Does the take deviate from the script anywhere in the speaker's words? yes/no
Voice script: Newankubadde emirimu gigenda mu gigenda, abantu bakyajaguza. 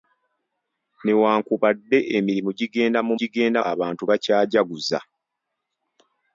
no